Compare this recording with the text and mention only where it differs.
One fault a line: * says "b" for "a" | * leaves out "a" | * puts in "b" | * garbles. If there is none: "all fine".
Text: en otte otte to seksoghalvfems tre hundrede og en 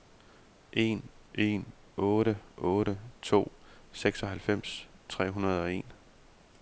* puts in "en"